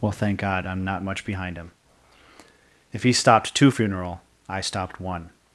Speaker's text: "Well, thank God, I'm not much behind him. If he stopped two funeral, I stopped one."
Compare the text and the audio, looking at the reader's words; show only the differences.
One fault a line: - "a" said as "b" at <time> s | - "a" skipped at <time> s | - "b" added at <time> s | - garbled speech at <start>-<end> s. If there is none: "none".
none